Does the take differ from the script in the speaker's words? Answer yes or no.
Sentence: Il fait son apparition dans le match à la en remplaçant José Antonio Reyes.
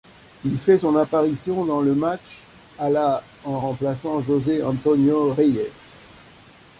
no